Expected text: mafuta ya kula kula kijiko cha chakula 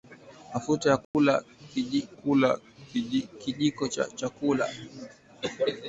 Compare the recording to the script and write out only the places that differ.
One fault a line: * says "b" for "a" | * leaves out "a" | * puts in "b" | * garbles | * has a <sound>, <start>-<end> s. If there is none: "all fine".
* has a dropout, 1.0-1.1 s